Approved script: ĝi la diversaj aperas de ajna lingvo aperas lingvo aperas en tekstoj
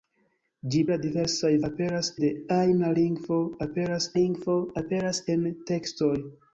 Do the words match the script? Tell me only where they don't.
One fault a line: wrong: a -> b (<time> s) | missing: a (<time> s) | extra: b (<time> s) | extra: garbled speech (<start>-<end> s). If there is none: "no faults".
no faults